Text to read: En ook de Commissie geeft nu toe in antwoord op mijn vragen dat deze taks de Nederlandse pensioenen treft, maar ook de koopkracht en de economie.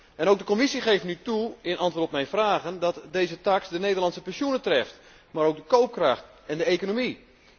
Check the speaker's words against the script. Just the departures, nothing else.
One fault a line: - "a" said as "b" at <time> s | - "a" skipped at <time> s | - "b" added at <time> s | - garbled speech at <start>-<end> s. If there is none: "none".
none